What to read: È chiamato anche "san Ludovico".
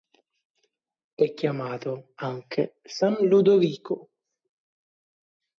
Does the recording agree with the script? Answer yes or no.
yes